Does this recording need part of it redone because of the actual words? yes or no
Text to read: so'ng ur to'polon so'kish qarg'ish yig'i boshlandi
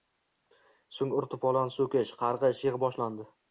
no